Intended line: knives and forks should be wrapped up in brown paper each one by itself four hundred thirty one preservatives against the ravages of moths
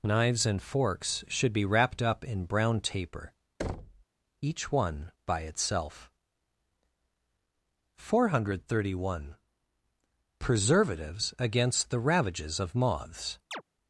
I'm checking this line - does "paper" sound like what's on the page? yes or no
no